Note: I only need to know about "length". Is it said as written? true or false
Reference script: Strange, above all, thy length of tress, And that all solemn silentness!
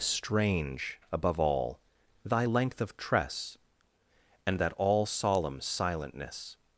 true